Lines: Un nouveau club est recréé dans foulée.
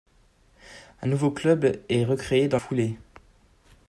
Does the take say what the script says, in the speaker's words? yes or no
yes